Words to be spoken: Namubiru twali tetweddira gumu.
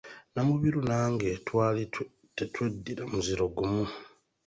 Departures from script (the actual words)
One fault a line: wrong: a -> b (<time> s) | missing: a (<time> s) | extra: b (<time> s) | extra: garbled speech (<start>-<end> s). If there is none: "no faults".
extra: nange (0.9 s)
extra: muziro (3.1 s)